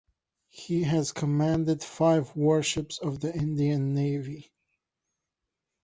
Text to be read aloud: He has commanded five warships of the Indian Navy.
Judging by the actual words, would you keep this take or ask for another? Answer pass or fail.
pass